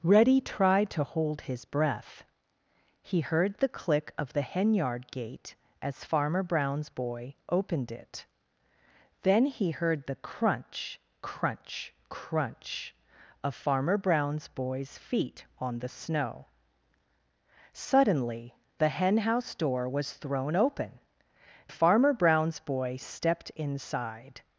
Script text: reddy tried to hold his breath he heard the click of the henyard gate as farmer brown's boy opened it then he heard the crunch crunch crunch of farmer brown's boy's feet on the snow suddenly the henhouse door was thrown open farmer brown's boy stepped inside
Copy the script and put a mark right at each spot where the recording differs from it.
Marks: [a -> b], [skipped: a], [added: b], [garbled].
reddy tried to hold his breath he heard the click of the henyard gate as farmer brown's boy opened it then he heard the crunch crunch crunch of farmer brown's boy's feet on the snow suddenly the henhouse door was thrown open farmer brown's boy stepped inside